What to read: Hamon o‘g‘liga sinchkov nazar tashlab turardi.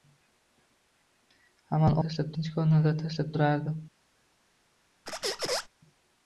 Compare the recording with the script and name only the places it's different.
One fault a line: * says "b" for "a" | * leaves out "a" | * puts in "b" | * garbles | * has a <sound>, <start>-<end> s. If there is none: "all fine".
* says "tashlab" for "o‘g‘liga"
* has a squeak, 5.1-5.7 s